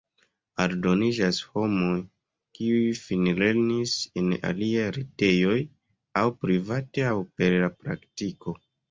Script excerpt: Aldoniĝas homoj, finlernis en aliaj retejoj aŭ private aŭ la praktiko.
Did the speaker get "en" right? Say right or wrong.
right